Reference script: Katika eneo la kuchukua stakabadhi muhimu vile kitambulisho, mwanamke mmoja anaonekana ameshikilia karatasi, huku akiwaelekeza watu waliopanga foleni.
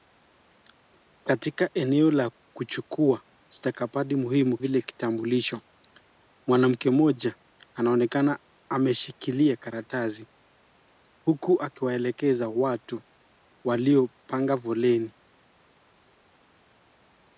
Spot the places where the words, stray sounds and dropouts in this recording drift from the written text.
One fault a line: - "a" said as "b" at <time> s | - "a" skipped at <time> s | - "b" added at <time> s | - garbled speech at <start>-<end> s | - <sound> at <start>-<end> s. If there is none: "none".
none